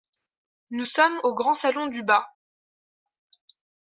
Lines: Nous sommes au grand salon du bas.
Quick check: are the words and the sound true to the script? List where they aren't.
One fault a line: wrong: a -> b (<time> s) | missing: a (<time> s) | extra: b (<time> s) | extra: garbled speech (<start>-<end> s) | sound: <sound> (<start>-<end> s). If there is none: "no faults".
no faults